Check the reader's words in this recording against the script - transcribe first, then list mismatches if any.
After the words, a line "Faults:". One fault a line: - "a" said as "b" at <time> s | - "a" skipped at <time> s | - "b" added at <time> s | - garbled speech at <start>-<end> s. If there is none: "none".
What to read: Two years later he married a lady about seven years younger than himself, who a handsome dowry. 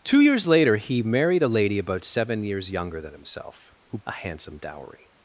Two years later he married a lady about seven years younger than himself, who a handsome dowry.
Faults:
none